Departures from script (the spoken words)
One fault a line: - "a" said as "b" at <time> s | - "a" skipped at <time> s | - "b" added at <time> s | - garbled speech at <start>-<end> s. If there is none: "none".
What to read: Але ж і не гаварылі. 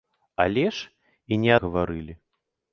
none